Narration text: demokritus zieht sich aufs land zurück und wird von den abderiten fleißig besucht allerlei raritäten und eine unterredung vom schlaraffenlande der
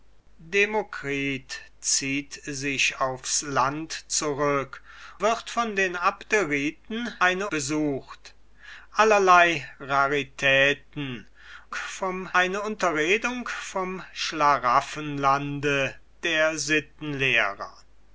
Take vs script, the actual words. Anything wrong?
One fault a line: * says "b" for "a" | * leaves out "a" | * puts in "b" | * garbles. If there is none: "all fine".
* leaves out "und"
* says "eine" for "fleißig"
* says "vom" for "und"